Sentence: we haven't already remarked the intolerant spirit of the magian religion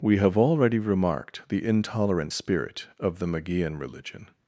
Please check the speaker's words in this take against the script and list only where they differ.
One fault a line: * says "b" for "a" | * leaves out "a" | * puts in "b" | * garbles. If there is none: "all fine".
* says "have" for "haven't"